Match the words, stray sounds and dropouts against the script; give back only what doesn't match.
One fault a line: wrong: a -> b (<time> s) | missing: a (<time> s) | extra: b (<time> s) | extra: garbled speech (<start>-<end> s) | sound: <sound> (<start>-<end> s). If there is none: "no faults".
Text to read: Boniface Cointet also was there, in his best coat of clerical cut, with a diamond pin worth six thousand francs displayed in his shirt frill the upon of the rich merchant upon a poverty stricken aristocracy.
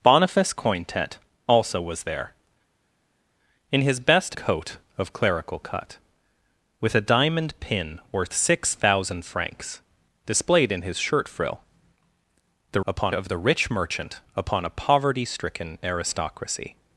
no faults